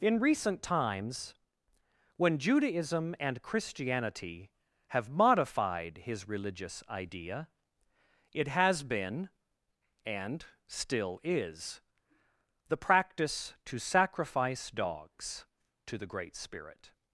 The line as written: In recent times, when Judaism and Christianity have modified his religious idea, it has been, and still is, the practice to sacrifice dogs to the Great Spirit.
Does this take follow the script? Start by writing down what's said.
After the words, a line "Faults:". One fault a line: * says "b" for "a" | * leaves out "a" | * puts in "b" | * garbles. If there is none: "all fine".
In recent times, when Judaism and Christianity have modified his religious idea, it has been, and still is, the practice to sacrifice dogs to the Great Spirit.
Faults:
all fine